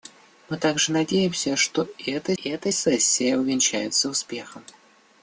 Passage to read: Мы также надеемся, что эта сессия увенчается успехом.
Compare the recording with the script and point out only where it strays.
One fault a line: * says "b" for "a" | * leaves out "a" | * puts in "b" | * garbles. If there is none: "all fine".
* puts in "эта"